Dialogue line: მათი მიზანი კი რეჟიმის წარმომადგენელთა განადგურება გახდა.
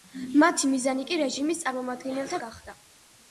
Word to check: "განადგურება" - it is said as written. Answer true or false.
false